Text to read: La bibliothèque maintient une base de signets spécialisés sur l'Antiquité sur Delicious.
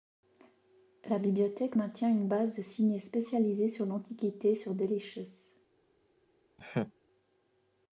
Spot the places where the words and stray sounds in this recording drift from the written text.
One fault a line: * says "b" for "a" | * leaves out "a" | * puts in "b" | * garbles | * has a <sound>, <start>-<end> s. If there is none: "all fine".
* has a laugh, 6.6-6.9 s